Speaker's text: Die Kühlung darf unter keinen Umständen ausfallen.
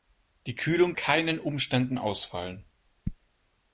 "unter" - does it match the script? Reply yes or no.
no